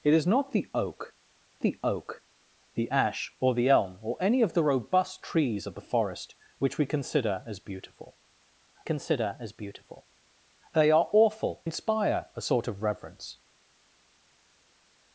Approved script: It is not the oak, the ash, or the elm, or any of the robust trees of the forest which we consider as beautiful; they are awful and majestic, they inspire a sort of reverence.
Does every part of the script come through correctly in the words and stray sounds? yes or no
no